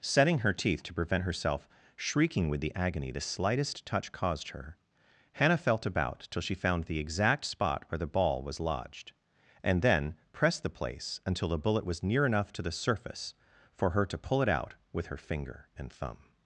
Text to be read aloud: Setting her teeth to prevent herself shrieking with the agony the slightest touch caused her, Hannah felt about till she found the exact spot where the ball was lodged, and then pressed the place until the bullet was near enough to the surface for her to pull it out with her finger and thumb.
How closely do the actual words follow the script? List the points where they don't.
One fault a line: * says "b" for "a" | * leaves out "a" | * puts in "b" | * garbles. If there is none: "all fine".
all fine